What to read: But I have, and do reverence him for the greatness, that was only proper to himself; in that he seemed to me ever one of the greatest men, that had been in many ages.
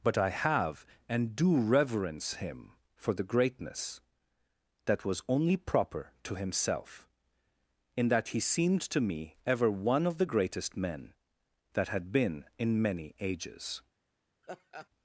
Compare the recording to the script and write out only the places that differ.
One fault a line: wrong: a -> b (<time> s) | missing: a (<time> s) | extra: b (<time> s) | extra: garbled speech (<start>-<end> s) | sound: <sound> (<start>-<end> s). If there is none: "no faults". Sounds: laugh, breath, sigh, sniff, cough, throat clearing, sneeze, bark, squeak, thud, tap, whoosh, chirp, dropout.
sound: laugh (14.4-14.9 s)